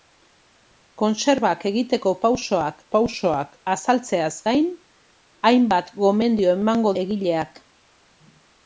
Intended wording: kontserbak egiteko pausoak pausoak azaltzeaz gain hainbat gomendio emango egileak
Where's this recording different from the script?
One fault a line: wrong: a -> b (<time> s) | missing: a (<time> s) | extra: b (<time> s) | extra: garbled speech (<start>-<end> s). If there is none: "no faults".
no faults